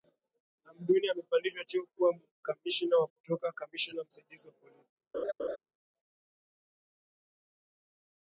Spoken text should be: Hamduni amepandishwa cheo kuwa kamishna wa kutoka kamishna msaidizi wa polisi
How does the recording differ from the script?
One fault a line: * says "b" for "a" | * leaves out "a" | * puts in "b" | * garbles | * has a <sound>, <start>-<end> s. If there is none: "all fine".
* has a laugh, 5.1-5.6 s